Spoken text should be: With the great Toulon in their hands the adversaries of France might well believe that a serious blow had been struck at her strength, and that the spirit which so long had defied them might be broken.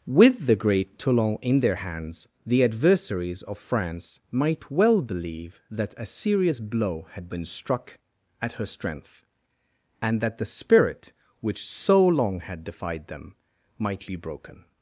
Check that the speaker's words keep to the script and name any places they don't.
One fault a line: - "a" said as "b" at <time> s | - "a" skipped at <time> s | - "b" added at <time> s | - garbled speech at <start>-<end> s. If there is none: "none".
none